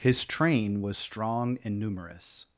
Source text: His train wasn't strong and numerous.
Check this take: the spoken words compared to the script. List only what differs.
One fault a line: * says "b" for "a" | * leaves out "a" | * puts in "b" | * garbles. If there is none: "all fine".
* says "was" for "wasn't"